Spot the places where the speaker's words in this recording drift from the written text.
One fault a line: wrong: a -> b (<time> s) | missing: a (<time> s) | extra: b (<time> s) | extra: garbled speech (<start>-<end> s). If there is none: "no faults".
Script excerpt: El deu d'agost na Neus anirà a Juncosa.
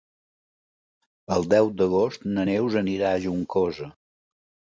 no faults